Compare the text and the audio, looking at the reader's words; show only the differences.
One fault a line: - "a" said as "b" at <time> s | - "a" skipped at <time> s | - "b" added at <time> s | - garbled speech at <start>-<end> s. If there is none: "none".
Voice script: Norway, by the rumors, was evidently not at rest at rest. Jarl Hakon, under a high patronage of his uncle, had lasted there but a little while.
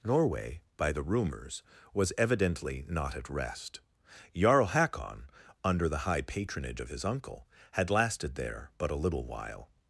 - "at rest" skipped at 3.8 s
- "a" said as "the" at 5.9 s